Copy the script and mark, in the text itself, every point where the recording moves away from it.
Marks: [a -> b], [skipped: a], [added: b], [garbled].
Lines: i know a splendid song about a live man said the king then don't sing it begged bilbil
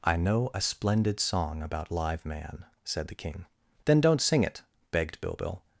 i know a splendid song about [skipped: a] live man said the king then don't sing it begged bilbil